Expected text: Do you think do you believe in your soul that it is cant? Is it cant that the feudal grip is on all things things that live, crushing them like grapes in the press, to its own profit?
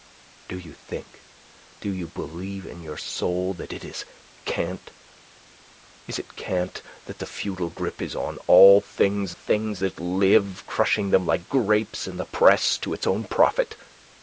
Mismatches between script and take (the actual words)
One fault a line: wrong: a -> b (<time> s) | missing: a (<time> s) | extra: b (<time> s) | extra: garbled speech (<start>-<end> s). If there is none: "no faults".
no faults